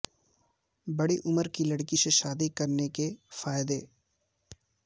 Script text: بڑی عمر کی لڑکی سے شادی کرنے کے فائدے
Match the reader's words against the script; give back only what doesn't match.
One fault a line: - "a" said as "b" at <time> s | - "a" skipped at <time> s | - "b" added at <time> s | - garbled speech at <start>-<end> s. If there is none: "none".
none